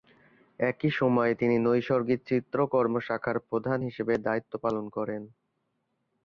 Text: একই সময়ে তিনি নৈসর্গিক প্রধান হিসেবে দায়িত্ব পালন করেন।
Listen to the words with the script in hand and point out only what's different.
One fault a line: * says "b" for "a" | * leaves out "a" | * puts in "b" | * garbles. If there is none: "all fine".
* puts in "চিত্রকর্ম শাখার"